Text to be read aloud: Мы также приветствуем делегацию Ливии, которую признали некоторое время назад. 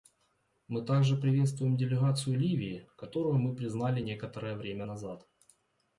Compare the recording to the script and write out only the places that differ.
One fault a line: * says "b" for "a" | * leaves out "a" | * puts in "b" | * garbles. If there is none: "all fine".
* puts in "мы"